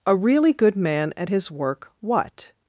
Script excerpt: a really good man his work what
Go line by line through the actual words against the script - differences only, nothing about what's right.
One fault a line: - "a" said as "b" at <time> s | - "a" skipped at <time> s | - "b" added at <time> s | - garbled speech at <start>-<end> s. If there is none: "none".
- "at" added at 1.1 s